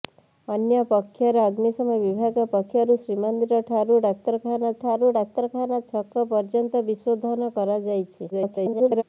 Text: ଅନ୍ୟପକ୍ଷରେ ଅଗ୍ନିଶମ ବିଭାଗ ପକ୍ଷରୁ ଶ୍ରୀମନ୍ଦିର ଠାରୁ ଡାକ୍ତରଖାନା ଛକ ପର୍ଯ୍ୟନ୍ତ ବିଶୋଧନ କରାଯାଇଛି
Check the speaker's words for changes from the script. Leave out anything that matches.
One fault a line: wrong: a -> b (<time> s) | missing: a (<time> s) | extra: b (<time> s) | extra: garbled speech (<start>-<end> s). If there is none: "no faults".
extra: ଠାରୁ ଡାକ୍ତରଖାନା (4.8 s)
extra: garbled speech (8.3-9.0 s)